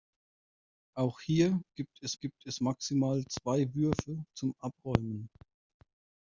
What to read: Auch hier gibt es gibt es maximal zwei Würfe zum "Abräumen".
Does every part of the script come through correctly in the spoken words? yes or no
yes